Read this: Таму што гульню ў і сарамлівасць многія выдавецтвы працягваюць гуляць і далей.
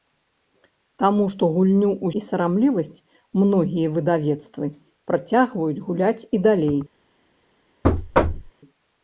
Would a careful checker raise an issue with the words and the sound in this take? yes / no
yes